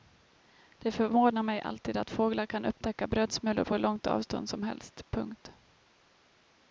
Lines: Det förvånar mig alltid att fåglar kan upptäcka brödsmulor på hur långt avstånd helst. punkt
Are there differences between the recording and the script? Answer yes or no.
yes